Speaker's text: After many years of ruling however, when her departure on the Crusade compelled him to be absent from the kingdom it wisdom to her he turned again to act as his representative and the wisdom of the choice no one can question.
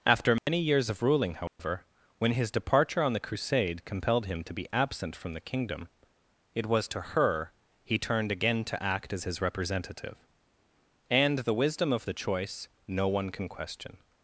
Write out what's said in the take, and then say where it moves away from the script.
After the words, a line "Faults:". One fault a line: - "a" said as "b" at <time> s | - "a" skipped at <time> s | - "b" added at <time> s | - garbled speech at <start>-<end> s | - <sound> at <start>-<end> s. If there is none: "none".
After many years of ruling however, when his departure on the Crusade compelled him to be absent from the kingdom it was to her he turned again to act as his representative and the wisdom of the choice no one can question.
Faults:
- dropout at 0.4-0.5 s
- dropout at 1.5-1.6 s
- "her" said as "his" at 2.3 s
- "wisdom" said as "was" at 6.7 s